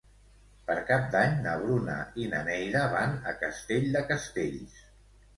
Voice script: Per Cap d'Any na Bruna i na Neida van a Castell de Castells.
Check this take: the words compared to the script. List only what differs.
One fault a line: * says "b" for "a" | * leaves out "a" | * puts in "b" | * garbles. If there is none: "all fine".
all fine